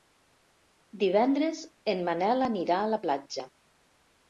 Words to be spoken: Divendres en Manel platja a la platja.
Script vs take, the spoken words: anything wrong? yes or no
yes